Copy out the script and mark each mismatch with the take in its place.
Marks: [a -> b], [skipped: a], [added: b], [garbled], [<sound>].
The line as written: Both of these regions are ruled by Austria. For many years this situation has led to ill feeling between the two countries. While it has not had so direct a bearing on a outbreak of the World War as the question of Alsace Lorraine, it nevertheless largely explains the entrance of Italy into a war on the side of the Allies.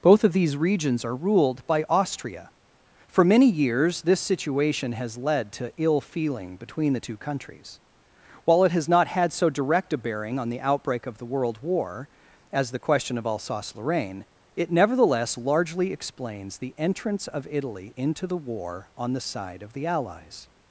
Both of these regions are ruled by Austria. For many years this situation has led to ill feeling between the two countries. While it has not had so direct a bearing on [a -> the] outbreak of the World War as the question of Alsace Lorraine, it nevertheless largely explains the entrance of Italy into [a -> the] war on the side of the Allies.